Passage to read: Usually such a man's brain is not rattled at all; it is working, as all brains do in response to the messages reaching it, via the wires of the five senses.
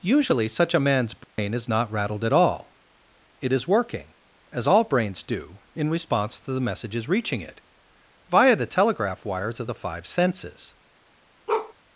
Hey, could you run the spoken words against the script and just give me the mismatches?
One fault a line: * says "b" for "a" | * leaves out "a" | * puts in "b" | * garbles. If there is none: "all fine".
* puts in "telegraph"